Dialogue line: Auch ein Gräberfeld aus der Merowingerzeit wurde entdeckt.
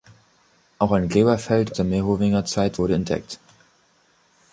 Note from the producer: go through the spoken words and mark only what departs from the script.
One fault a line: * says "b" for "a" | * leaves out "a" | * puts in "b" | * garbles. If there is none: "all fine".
* leaves out "aus"